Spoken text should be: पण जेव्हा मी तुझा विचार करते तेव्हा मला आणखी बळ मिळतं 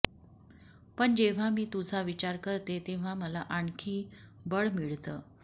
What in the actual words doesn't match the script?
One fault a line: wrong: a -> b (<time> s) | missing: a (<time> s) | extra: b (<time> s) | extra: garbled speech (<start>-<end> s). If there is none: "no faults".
no faults